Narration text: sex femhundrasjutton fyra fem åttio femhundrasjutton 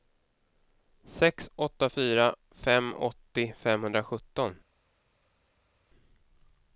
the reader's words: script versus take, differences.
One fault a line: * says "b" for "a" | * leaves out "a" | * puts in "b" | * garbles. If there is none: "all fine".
* says "åtta" for "femhundrasjutton"